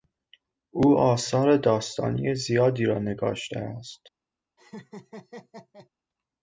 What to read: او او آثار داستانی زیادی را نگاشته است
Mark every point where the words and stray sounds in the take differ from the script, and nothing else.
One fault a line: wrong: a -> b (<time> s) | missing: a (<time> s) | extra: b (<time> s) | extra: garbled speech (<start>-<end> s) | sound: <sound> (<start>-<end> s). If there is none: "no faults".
missing: او (1.0 s)
sound: laugh (4.6-5.9 s)